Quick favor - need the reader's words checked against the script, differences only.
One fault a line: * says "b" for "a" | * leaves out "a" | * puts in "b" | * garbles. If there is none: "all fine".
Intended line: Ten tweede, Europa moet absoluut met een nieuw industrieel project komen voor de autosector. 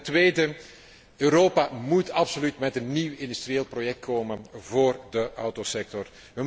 all fine